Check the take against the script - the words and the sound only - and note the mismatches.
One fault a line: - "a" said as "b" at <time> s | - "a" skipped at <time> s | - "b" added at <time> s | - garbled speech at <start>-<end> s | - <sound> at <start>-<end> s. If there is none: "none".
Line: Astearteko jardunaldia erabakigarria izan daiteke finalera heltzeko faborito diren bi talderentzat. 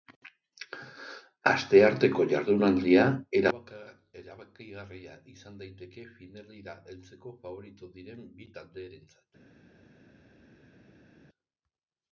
none